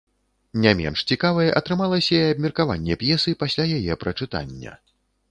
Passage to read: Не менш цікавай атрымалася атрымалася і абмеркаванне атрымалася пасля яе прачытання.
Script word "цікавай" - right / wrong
right